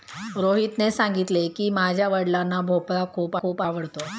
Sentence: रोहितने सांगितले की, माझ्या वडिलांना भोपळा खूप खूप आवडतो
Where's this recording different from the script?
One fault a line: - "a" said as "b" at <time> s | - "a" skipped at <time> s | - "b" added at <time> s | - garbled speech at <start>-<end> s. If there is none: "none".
none